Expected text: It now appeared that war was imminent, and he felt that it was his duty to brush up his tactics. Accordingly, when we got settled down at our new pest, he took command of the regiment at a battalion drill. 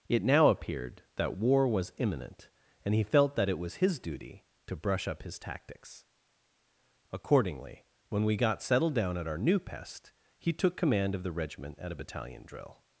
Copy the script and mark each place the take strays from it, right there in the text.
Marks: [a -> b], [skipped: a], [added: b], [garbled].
It now appeared that war was imminent, and he felt that it was his duty to brush up his tactics. Accordingly, when we got settled down at our new pest, he took command of the regiment at a battalion drill.